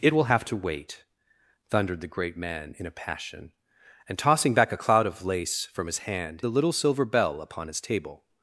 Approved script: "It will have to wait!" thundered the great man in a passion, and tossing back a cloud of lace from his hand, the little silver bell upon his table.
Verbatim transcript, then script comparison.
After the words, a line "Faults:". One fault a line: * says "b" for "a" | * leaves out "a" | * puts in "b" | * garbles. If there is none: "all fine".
"It will have to wait!" thundered the great man in a passion, and tossing back a cloud of lace from his hand, the little silver bell upon his table.
Faults:
all fine